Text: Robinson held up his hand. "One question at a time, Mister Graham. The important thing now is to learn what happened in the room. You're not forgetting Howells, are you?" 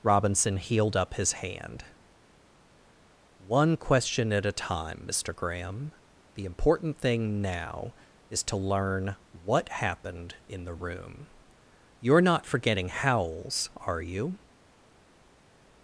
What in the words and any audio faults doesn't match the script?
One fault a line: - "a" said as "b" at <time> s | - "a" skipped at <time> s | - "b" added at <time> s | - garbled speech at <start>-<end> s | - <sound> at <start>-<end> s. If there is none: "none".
- "held" said as "healed" at 0.6 s